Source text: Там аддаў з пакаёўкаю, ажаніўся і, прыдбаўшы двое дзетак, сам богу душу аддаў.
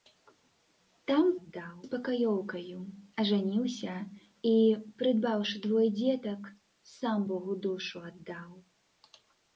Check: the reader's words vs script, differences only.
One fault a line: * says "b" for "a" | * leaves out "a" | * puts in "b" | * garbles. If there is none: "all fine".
all fine